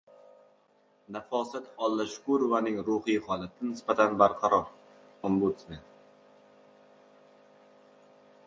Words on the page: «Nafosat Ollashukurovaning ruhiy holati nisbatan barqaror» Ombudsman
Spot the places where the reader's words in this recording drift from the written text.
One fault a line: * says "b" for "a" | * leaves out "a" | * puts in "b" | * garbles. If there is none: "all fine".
all fine